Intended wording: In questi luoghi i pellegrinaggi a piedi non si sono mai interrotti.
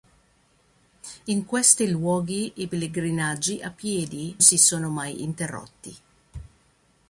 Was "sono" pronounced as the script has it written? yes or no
yes